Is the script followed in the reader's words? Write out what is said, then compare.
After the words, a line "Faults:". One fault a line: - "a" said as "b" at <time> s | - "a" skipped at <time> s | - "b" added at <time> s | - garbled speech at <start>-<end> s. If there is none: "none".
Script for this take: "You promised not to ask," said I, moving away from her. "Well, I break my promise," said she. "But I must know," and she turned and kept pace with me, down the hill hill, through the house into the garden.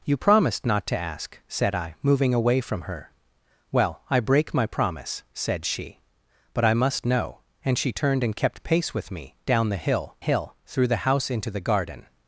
"You promised not to ask," said I, moving away from her. "Well, I break my promise," said she. "But I must know," and she turned and kept pace with me, down the hill hill, through the house into the garden.
Faults:
none